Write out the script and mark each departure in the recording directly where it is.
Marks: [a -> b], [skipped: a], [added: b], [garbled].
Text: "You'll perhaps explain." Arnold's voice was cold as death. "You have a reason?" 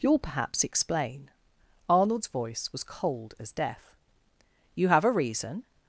"You'll perhaps explain." Arnold's voice was cold as death. "You have a reason?"